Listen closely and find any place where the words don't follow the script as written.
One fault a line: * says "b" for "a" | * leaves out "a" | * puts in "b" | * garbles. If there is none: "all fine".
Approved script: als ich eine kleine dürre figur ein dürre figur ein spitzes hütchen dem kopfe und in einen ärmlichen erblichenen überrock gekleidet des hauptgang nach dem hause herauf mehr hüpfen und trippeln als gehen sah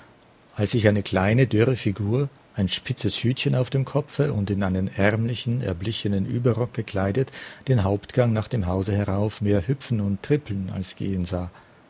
* leaves out "dürre figur ein"
* puts in "auf"
* says "den" for "des"